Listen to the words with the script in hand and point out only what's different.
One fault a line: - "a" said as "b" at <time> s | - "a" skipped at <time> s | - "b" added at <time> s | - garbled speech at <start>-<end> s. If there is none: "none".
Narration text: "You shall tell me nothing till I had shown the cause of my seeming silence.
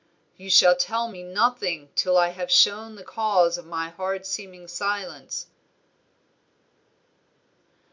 - "had" said as "have" at 2.3 s
- "hard" added at 3.9 s